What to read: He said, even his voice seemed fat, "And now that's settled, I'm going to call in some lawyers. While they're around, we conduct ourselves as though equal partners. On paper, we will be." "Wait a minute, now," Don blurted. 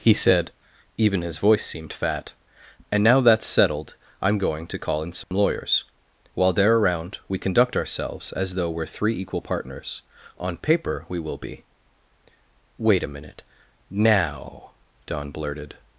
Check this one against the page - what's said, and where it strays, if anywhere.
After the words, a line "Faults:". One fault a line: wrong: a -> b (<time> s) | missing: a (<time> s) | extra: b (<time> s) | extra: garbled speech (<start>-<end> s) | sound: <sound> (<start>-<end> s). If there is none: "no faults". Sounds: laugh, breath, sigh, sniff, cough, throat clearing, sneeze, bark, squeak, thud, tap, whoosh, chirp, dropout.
He said, even his voice seemed fat, "And now that's settled, I'm going to call in some lawyers. While they're around, we conduct ourselves as though we're three equal partners. On paper, we will be." "Wait a minute, now," Don blurted.
Faults:
sound: dropout (5.2-5.3 s)
extra: we're three (8.7 s)